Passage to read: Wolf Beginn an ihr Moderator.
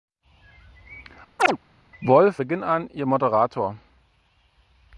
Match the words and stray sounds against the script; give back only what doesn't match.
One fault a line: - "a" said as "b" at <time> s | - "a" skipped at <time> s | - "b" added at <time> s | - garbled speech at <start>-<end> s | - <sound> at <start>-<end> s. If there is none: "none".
- chirp at 1.4-1.6 s